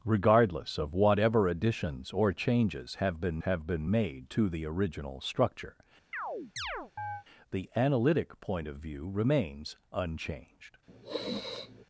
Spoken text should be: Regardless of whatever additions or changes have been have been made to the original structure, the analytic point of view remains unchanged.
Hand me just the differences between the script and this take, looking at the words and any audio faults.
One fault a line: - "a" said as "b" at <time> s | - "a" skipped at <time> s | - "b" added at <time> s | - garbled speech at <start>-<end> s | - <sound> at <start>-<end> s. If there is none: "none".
- chirp at 6.1-7.2 s
- sniff at 10.9-11.8 s